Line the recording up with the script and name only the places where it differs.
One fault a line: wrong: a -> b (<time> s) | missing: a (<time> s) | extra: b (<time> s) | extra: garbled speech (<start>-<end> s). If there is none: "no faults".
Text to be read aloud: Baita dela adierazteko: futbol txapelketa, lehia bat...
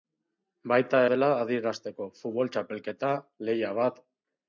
no faults